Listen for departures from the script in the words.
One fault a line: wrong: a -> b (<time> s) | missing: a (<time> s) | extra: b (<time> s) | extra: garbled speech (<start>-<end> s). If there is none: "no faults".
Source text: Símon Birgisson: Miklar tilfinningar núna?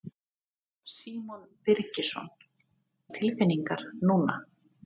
missing: Miklar (2.3 s)